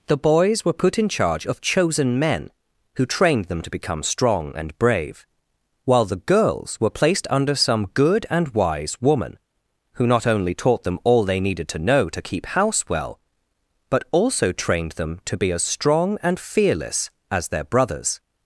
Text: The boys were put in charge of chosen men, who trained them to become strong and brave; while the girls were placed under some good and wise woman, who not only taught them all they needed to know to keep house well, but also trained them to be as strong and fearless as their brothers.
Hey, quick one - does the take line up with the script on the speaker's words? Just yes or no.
yes